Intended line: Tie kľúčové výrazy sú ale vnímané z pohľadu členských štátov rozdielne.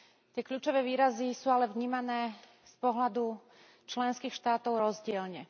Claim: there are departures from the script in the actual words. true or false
false